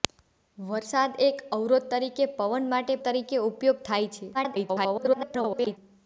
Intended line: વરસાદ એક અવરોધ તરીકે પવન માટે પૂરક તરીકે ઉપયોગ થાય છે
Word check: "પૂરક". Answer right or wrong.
wrong